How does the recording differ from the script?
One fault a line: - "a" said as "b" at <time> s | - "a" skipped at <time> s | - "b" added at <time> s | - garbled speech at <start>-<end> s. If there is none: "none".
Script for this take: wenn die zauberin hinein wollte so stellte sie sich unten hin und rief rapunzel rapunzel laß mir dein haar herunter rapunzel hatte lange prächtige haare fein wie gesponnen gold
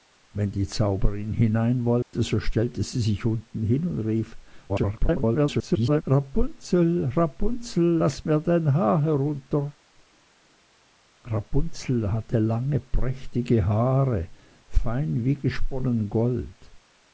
- garbled speech at 4.7-6.0 s